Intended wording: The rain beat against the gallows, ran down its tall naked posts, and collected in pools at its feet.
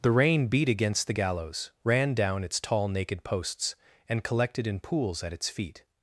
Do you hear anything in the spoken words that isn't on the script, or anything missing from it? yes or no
no